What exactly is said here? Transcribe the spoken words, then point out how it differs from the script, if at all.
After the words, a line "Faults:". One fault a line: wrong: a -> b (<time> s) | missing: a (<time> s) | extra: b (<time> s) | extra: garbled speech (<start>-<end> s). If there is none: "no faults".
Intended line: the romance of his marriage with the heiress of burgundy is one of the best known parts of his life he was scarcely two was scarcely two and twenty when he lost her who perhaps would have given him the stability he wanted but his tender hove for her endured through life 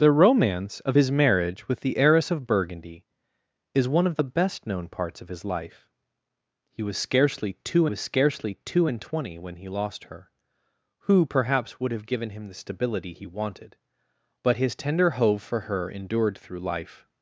the romance of his marriage with the heiress of burgundy is one of the best known parts of his life he was scarcely two was scarcely two and twenty when he lost her who perhaps would have given him the stability he wanted but his tender hove for her endured through life
Faults:
no faults